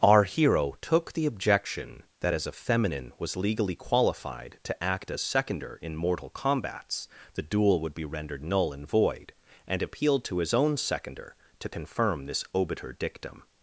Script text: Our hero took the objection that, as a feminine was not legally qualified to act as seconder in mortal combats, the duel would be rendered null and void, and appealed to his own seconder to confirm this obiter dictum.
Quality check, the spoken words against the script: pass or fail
fail